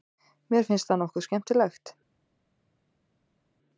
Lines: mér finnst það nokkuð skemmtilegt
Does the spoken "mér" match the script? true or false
true